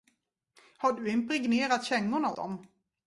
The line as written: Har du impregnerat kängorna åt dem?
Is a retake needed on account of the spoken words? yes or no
yes